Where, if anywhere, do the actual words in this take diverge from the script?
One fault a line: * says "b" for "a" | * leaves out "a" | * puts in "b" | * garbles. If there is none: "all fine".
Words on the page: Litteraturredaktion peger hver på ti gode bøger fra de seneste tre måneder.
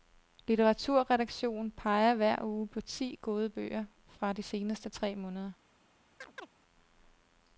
* puts in "uge"